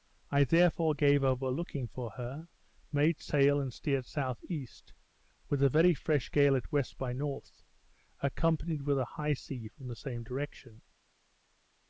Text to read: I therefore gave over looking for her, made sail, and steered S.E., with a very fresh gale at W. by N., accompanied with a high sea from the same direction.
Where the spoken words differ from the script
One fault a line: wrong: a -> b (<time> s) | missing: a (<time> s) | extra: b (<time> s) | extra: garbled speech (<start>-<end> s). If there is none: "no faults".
no faults